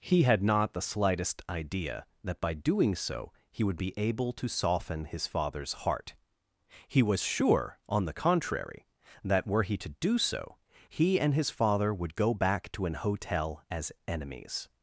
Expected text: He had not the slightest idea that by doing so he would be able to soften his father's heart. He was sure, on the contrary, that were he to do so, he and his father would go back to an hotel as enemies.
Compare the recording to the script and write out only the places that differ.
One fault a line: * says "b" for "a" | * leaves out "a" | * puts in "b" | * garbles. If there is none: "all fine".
all fine